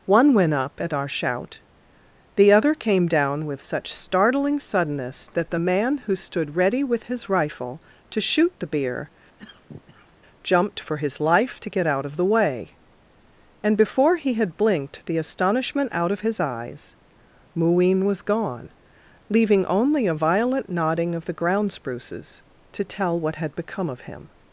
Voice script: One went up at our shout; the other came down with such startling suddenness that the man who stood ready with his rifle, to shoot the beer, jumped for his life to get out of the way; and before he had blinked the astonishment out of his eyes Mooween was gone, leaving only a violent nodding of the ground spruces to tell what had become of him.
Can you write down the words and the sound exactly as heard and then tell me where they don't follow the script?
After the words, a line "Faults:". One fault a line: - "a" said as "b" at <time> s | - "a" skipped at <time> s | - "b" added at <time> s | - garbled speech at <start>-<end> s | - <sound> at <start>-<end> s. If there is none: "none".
One went up at our shout; the other came down with such startling suddenness that the man who stood ready with his rifle, to shoot the beer, jumped for his life to get out of the way; and before he had blinked the astonishment out of his eyes Mooween was gone, leaving only a violent nodding of the ground spruces to tell what had become of him.
Faults:
- cough at 9.4-10.1 s